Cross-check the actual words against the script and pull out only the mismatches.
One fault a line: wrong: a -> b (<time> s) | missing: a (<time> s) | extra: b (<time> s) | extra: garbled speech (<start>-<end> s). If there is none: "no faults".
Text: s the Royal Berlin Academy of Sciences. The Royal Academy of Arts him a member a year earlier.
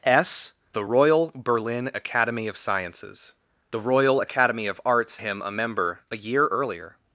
no faults